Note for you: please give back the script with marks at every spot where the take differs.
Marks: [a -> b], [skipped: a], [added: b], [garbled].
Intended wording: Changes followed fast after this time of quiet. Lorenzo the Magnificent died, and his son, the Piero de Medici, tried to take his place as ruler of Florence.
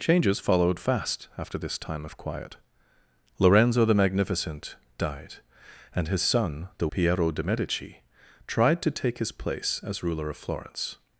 Changes followed fast after this time of quiet. Lorenzo the Magnificent died, and his son, the Piero de Medici, tried to take his place as ruler of Florence.